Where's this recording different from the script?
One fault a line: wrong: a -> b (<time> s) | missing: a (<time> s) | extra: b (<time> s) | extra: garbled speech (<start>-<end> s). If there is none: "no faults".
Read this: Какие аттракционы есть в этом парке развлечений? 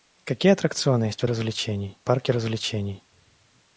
wrong: этом -> развлечений (1.3 s)